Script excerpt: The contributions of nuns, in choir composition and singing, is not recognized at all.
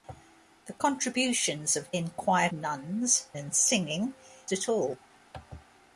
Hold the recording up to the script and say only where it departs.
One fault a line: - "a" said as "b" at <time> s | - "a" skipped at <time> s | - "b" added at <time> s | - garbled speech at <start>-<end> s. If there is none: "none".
- "nuns" skipped at 1.9 s
- "composition" said as "nuns" at 2.5 s
- "is not recognized" skipped at 4.1 s